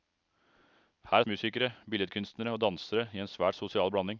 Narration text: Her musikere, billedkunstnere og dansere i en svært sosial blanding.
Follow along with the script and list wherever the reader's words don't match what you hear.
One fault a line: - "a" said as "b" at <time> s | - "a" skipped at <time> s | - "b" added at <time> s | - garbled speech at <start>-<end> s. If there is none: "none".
none